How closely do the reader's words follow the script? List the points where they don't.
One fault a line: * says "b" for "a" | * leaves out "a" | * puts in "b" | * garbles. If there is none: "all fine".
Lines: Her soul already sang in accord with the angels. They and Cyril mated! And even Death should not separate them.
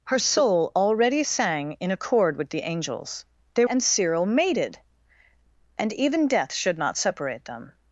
all fine